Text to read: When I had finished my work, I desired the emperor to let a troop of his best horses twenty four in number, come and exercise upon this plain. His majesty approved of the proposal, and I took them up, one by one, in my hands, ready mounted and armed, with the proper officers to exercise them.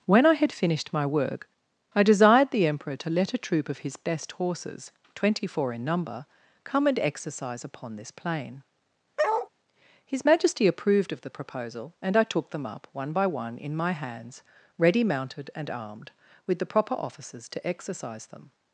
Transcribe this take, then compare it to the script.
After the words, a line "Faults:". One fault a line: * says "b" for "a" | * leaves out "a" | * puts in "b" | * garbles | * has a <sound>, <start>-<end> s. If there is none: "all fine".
When I had finished my work, I desired the emperor to let a troop of his best horses twenty four in number, come and exercise upon this plain. His majesty approved of the proposal, and I took them up, one by one, in my hands, ready mounted and armed, with the proper officers to exercise them.
Faults:
* has a bark, 9.2-9.5 s